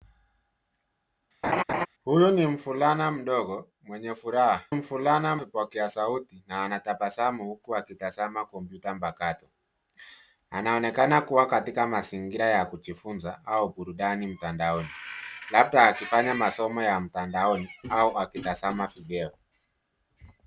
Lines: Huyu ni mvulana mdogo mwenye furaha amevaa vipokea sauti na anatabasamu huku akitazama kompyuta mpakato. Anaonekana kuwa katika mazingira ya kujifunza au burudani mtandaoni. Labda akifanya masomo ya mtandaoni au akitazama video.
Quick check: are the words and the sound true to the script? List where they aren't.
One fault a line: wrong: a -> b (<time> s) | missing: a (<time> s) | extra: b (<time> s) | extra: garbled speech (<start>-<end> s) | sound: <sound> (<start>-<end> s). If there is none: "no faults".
sound: laugh (1.4-1.9 s)
wrong: amevaa -> mvulana (4.7 s)